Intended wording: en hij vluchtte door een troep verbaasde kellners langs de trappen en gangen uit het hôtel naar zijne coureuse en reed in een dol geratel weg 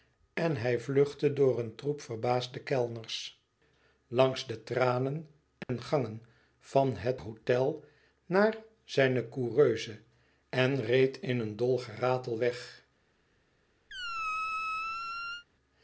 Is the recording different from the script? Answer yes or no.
yes